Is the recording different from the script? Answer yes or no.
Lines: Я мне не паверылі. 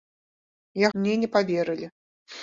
no